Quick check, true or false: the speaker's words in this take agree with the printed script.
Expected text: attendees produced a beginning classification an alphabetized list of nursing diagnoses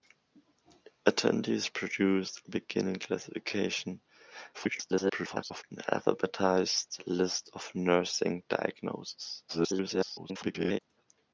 false